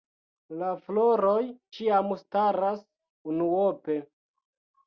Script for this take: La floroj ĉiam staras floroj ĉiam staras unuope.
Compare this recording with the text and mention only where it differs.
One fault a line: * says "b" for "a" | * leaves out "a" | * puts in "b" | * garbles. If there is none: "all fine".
* leaves out "floroj ĉiam staras"